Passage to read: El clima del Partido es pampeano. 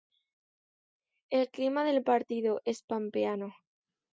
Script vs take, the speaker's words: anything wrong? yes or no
no